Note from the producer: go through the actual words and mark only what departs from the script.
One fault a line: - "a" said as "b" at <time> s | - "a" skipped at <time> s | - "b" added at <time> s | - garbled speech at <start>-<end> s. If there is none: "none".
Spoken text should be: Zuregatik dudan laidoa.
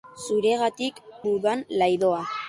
none